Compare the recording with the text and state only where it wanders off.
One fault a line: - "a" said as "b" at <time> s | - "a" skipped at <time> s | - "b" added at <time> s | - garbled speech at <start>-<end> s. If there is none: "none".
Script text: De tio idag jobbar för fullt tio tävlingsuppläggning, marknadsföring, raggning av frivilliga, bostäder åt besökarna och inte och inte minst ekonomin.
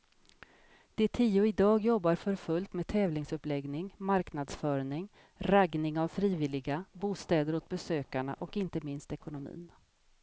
- "tio" said as "med" at 2.7 s
- "och inte" skipped at 8.8 s